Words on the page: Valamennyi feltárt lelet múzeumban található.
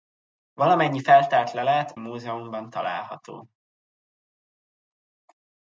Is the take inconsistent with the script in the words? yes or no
no